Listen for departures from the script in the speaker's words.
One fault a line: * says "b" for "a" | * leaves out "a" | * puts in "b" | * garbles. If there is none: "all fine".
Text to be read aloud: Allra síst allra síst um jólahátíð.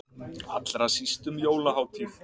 * leaves out "allra síst"